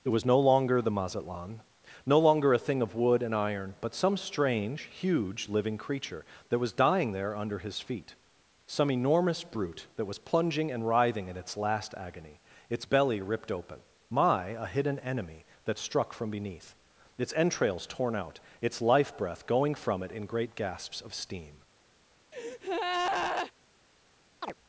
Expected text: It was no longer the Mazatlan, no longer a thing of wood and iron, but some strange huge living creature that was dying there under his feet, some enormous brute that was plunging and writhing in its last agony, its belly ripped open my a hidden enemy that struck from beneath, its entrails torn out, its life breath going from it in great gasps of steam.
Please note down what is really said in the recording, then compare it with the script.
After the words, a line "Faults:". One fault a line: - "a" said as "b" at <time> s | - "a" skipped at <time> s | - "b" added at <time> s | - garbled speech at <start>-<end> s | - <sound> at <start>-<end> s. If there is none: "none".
It was no longer the Mazatlan, no longer a thing of wood and iron, but some strange huge living creature that was dying there under his feet, some enormous brute that was plunging and writhing in its last agony, its belly ripped open my a hidden enemy that struck from beneath, its entrails torn out, its life breath going from it in great gasps of steam.
Faults:
- breath at 22.3-23.5 s
- chirp at 24.4-24.5 s